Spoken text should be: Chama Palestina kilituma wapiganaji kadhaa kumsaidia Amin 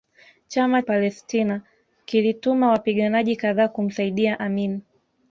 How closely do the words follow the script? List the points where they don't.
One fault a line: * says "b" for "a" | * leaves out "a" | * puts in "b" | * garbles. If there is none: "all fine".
all fine